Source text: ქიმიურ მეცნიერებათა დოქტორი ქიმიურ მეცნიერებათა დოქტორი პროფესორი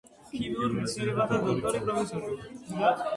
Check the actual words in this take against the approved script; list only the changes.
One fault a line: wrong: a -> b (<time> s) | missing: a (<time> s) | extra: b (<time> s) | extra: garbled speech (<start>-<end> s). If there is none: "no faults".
missing: ქიმიურ მეცნიერებათა დოქტორი (1.8 s)